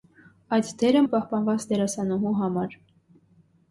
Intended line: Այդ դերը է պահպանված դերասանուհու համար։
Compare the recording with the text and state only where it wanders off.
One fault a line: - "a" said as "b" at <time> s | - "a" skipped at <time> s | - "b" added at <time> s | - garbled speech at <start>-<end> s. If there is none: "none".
none